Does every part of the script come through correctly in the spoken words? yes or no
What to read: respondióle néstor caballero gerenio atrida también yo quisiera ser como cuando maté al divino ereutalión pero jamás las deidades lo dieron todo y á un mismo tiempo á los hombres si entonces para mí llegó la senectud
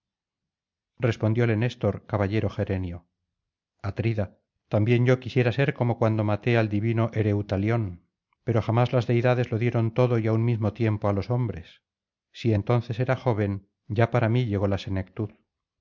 no